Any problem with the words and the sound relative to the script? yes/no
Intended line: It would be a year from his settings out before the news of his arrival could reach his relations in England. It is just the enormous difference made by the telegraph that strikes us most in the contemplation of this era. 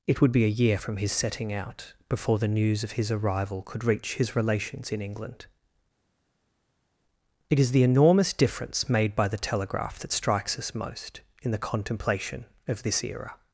yes